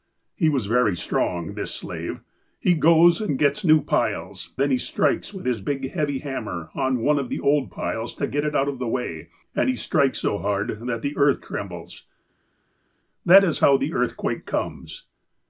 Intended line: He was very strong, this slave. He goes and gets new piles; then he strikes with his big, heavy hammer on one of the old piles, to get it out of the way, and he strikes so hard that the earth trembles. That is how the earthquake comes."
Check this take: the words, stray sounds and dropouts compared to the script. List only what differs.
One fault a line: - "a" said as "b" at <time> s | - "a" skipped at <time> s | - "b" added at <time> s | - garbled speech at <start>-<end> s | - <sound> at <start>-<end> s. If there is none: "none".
none